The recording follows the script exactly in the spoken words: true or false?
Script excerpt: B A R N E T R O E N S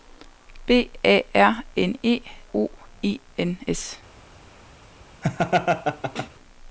false